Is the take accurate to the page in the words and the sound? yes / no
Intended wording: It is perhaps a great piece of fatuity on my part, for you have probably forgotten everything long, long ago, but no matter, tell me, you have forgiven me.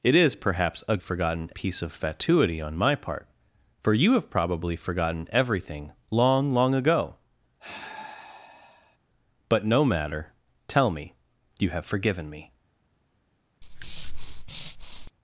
no